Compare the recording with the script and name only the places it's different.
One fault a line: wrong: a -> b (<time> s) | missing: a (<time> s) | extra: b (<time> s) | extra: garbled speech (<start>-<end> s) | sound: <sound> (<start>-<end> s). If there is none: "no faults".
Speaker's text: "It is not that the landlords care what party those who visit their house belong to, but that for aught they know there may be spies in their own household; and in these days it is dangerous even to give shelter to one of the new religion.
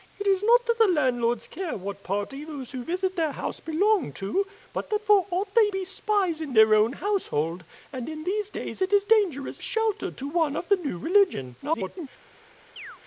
missing: know there may (5.7 s)
missing: even to give (9.6 s)
extra: garbled speech (11.6-12.1 s)
sound: chirp (12.8-13.0 s)